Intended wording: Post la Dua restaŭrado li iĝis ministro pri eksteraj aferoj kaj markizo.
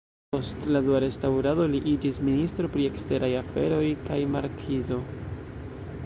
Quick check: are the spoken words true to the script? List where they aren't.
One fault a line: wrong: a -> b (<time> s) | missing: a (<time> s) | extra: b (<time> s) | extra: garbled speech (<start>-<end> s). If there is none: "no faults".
no faults